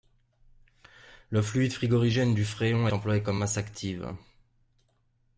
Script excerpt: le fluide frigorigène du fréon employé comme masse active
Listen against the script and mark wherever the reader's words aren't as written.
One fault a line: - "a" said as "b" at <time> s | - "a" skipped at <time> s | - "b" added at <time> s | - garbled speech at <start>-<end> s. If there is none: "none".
none